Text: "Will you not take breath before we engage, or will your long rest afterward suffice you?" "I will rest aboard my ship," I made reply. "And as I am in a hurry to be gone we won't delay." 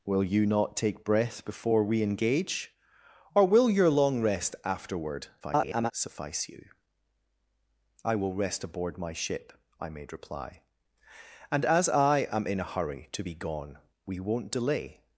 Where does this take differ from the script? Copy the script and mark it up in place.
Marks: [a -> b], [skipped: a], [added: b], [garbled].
"Will you not take breath before we engage, or will your long rest afterward [garbled] suffice you?" "I will rest aboard my ship," I made reply. "And as I am in a hurry to be gone we won't delay."